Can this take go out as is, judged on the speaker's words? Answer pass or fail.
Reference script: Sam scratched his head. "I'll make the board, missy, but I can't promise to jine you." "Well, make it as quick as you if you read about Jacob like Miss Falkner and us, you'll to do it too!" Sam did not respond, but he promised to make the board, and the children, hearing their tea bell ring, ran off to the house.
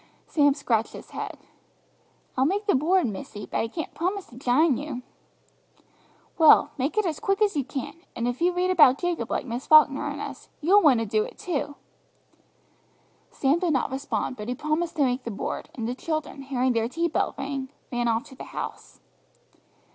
fail